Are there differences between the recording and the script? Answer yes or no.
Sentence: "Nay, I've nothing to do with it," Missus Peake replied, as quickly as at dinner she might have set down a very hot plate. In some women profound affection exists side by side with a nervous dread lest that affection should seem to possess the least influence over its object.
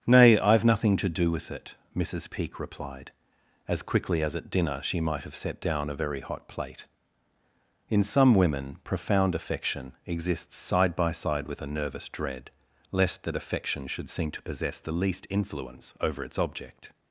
no